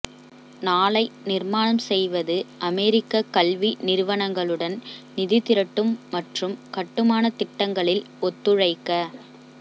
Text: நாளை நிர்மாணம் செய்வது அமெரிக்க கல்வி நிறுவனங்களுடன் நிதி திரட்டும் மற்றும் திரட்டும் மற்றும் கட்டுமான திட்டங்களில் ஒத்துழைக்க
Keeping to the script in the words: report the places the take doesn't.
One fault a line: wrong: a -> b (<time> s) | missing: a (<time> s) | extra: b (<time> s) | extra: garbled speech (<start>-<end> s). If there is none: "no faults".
missing: திரட்டும் மற்றும் (6.6 s)